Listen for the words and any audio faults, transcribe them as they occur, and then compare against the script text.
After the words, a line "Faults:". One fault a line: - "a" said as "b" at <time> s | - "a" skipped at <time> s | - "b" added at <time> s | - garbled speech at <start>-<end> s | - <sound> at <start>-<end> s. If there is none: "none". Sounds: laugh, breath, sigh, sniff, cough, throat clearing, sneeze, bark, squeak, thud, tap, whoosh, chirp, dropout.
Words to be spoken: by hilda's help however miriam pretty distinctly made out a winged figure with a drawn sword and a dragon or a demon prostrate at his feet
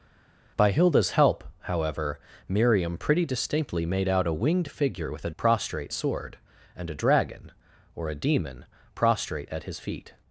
by hilda's help however miriam pretty distinctly made out a winged figure with a prostrate sword and a dragon or a demon prostrate at his feet
Faults:
- "drawn" said as "prostrate" at 5.4 s